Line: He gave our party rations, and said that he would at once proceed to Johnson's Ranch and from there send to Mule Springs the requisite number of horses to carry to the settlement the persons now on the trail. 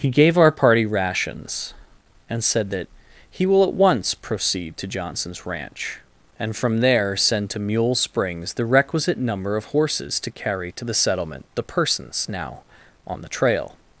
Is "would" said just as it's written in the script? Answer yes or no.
no